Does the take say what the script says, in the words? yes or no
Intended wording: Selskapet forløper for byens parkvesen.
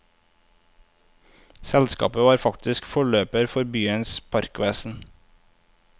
no